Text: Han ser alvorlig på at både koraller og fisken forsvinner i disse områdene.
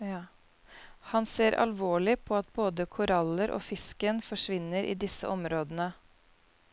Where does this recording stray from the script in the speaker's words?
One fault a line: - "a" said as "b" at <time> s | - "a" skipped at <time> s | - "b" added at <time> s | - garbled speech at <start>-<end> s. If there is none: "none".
none